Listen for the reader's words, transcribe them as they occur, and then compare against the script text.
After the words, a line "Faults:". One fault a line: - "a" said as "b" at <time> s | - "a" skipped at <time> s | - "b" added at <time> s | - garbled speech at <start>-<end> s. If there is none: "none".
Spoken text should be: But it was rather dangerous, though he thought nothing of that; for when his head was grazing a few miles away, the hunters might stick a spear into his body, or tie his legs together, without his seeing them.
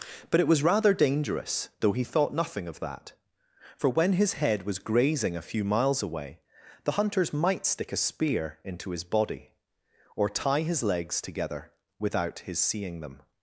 But it was rather dangerous, though he thought nothing of that; for when his head was grazing a few miles away, the hunters might stick a spear into his body, or tie his legs together, without his seeing them.
Faults:
none